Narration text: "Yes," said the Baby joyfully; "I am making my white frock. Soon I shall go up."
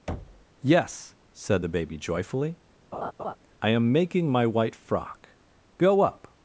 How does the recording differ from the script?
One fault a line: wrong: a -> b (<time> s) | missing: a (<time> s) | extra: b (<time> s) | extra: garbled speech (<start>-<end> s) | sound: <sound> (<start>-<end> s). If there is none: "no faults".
sound: thud (0.1-0.5 s)
sound: laugh (2.9-3.4 s)
missing: Soon I shall (5.3 s)